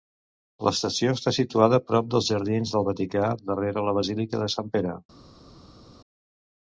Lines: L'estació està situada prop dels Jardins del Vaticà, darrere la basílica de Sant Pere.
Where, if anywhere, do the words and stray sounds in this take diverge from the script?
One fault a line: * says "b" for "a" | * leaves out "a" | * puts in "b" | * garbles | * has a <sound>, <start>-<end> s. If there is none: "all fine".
all fine